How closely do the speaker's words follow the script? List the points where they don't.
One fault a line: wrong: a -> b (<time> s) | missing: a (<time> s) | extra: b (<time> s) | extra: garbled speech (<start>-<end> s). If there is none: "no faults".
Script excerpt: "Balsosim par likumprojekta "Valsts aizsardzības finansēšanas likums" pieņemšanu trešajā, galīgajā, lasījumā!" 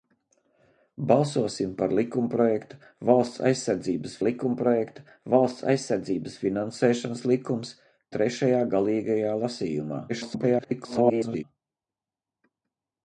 extra: likumprojekta Valsts aizsardzības (4.3 s)
missing: pieņemšanu (7.7 s)
extra: garbled speech (10.1-11.4 s)